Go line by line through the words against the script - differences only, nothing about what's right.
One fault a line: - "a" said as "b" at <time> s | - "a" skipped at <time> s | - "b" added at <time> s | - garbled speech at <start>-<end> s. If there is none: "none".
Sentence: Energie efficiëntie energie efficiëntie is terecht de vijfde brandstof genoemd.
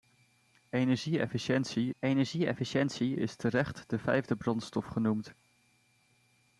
none